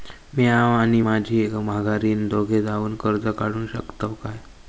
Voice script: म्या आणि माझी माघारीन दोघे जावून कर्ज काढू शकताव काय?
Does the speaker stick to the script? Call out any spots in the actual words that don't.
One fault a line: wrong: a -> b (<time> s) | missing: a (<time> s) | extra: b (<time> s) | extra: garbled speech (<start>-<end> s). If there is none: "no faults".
no faults